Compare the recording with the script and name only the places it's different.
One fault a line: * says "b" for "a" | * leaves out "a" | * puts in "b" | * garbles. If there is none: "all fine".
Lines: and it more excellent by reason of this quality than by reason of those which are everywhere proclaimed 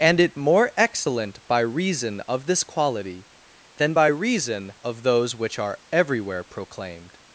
all fine